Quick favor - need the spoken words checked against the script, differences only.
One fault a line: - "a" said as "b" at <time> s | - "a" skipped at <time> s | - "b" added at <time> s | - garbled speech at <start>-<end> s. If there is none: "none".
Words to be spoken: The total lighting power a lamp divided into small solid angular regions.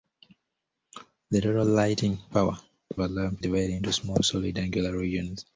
none